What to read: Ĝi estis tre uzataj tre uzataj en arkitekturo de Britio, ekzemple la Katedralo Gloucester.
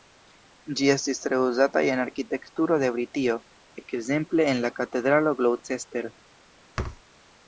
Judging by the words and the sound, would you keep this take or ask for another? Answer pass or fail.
fail